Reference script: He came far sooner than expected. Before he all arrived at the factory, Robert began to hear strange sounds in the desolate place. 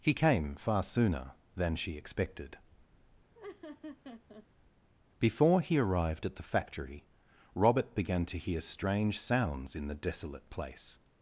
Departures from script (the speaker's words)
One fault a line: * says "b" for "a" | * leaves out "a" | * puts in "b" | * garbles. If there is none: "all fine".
* puts in "she"
* leaves out "all"